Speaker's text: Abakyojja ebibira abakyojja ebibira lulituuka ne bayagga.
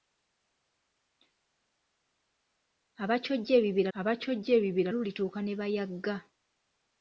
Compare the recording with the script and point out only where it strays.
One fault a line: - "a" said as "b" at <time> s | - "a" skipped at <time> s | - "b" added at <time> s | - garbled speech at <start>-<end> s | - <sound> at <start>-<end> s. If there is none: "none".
none